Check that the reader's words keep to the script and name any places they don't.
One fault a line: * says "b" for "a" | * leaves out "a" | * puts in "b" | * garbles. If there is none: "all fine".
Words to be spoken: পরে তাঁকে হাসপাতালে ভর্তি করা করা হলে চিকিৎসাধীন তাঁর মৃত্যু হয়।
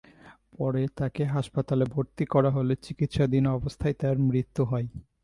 * leaves out "করা"
* puts in "অবস্থায়"